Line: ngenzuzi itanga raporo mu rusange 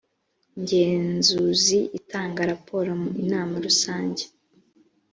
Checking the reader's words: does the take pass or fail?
fail